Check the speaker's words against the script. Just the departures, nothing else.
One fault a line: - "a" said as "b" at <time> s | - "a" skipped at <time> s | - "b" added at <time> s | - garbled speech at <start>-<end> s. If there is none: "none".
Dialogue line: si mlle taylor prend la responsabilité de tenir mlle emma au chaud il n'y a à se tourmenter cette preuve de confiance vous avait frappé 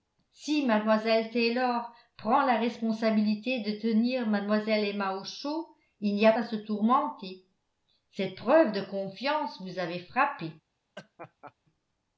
none